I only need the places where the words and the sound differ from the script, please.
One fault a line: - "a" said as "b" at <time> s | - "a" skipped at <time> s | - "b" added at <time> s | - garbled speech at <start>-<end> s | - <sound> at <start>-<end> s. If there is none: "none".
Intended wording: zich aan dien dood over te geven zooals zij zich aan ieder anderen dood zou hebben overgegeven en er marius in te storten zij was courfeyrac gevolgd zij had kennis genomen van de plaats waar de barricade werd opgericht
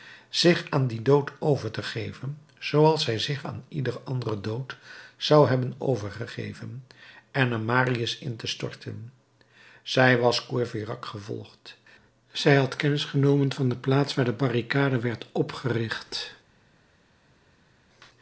none